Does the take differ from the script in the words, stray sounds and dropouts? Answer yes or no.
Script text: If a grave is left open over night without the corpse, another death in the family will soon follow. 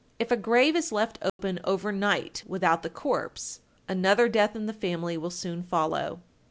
yes